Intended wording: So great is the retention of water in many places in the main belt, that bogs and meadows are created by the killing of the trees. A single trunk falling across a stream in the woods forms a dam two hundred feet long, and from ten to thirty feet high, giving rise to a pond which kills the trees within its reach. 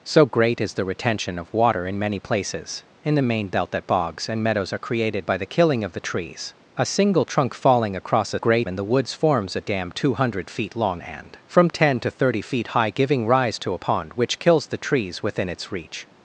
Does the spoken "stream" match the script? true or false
false